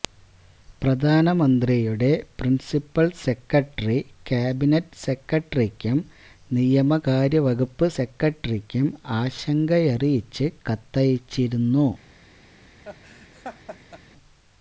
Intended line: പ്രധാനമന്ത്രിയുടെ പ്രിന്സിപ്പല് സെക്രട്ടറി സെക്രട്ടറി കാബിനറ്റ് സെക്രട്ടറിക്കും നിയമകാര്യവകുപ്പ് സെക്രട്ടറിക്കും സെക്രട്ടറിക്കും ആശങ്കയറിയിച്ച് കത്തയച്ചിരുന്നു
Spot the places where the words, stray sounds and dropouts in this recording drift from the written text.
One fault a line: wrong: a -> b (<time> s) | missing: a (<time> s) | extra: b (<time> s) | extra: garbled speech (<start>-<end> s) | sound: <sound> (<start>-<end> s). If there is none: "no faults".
missing: സെക്രട്ടറി (4.0 s)
missing: സെക്രട്ടറിക്കും (8.9 s)
sound: laugh (12.8-14.0 s)